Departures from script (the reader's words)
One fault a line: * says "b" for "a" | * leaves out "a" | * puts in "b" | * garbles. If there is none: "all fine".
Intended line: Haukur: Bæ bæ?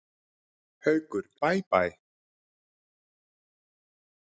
all fine